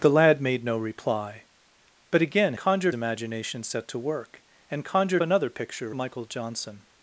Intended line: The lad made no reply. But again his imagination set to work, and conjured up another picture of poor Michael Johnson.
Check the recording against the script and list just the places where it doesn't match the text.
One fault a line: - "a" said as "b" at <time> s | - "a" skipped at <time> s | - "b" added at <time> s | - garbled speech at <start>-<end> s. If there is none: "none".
- "his" said as "conjured" at 2.6 s
- "up" skipped at 5.2 s
- "of poor" skipped at 6.0 s